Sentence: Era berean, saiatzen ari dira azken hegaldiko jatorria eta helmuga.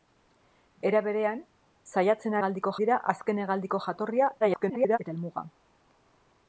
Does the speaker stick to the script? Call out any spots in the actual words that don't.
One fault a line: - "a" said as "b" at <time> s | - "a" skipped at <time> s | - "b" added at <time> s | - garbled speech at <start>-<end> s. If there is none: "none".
- "ari" said as "hegaldiko" at 2.4 s
- garbled speech at 4.4-5.0 s